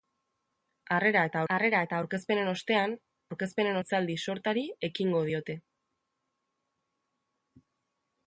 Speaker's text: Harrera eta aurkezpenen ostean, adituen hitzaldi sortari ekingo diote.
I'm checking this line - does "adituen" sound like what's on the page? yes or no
no